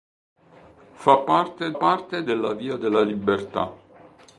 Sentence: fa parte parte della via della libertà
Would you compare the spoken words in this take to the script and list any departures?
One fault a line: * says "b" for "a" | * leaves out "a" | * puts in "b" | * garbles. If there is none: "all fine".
all fine